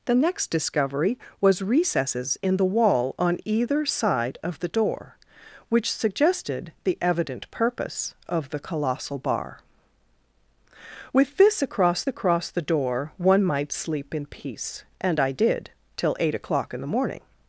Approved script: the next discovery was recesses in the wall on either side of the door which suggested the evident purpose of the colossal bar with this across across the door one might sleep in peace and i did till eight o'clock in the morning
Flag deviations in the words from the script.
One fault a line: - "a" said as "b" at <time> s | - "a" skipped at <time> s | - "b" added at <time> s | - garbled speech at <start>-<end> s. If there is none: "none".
none